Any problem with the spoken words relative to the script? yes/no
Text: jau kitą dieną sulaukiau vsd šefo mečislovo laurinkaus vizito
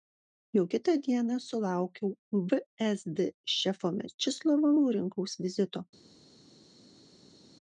no